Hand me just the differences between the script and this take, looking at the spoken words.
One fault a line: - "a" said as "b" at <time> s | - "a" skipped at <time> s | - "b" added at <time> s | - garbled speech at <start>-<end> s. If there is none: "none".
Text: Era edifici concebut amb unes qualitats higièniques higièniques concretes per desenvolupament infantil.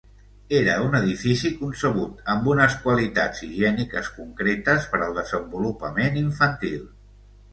- "un" added at 0.8 s
- "higièniques" skipped at 4.1 s
- "al" added at 5.1 s